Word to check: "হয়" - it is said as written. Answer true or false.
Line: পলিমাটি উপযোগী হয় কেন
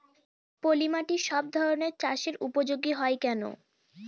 true